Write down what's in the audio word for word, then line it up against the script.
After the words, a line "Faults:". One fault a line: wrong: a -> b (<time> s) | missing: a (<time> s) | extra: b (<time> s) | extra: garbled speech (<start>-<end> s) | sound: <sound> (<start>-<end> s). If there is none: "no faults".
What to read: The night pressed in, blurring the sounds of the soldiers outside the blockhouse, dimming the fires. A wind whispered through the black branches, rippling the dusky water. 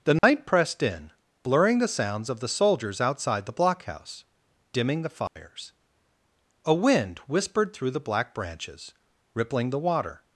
The night pressed in, blurring the sounds of the soldiers outside the blockhouse, dimming the fires. A wind whispered through the black branches, rippling the water.
Faults:
sound: dropout (0.2-0.2 s)
sound: dropout (5.3-5.4 s)
missing: dusky (9.8 s)